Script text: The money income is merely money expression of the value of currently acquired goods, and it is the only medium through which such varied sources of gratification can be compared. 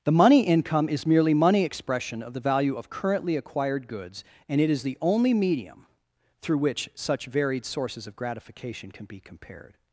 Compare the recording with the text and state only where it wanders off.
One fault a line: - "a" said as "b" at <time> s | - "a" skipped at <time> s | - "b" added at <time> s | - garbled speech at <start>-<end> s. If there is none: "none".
none